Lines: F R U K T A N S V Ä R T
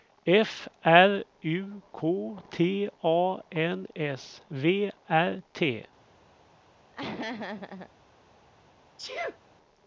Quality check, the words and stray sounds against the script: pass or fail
fail